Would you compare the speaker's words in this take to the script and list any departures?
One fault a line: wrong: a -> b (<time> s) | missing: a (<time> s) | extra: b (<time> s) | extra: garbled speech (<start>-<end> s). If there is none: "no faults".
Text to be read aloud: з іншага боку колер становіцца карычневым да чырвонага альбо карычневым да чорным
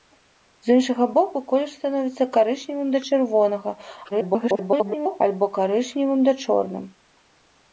extra: garbled speech (4.1-5.2 s)